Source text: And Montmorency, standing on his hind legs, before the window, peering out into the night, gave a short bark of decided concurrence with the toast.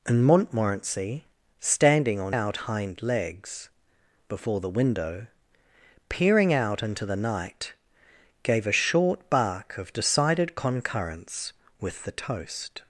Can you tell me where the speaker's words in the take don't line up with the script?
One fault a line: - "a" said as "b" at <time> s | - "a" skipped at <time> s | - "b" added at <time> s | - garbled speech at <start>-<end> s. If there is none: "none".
- "his" said as "out" at 2.3 s